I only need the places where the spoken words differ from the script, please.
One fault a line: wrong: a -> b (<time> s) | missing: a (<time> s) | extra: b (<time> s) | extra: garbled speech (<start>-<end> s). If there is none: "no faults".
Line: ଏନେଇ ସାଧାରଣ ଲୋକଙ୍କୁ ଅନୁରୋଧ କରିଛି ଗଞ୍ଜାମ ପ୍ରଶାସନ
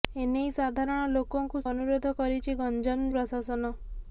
no faults